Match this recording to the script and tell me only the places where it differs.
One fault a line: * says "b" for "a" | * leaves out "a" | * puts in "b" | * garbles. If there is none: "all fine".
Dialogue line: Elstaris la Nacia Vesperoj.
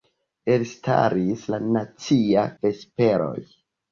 all fine